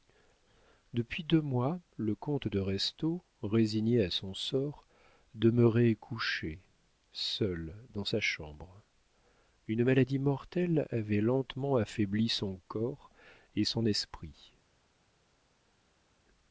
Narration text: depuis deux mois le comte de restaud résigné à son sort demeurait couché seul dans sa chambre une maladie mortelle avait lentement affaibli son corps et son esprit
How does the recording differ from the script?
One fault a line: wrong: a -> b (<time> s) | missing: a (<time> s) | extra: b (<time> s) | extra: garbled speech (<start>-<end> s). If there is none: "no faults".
no faults